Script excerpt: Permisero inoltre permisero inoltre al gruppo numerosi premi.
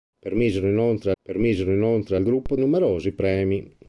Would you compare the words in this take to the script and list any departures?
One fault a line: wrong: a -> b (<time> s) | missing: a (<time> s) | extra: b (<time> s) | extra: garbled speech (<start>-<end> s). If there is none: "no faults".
no faults